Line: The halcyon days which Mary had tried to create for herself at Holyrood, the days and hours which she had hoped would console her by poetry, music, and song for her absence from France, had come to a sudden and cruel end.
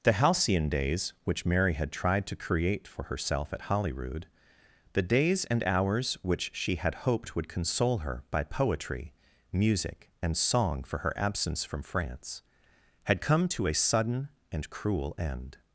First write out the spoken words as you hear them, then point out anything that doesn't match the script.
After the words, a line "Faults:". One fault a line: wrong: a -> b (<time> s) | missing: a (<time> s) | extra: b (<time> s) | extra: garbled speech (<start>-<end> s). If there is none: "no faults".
The halcyon days which Mary had tried to create for herself at Holyrood, the days and hours which she had hoped would console her by poetry, music, and song for her absence from France, had come to a sudden and cruel end.
Faults:
no faults